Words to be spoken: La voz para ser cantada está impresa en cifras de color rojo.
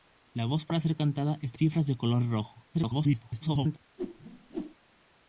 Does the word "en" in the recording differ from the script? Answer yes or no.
yes